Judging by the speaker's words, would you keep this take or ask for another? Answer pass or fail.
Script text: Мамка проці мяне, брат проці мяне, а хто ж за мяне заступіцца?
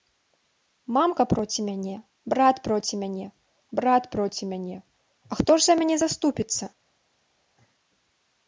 fail